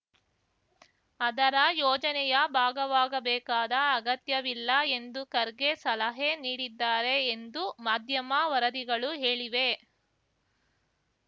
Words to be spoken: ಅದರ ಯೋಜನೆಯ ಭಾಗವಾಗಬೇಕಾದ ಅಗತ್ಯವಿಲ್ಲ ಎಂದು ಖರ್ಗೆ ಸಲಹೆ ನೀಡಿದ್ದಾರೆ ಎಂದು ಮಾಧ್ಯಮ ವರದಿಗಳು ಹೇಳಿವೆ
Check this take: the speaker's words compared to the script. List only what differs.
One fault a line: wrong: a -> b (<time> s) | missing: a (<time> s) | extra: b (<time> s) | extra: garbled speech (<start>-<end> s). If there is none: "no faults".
no faults